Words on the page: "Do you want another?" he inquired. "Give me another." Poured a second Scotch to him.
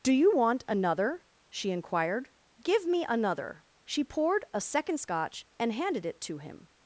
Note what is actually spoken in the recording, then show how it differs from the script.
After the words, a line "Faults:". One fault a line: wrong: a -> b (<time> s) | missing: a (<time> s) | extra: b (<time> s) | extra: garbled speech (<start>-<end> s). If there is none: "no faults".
"Do you want another?" she inquired. "Give me another." She poured a second Scotch and handed it to him.
Faults:
wrong: he -> she (1.5 s)
extra: She (3.8 s)
extra: and handed it (5.6 s)